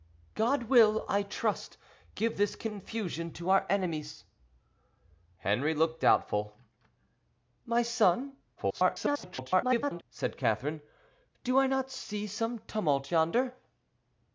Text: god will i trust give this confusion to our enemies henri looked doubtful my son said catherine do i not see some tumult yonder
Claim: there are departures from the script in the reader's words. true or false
true